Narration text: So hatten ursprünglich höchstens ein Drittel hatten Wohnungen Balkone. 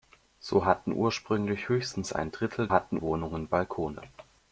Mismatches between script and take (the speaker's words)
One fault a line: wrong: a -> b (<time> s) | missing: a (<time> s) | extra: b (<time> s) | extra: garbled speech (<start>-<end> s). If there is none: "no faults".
no faults